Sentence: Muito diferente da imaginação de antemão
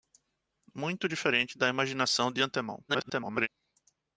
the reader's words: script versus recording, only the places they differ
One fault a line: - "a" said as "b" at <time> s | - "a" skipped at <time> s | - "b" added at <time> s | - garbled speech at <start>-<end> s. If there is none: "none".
- garbled speech at 2.9-3.5 s